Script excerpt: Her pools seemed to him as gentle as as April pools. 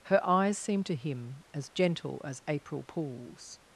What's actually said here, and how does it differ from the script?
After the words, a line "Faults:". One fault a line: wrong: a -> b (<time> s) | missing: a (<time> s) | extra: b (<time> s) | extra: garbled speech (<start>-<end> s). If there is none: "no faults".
Her eyes seemed to him as gentle as April pools.
Faults:
wrong: pools -> eyes (0.3 s)
missing: as (2.4 s)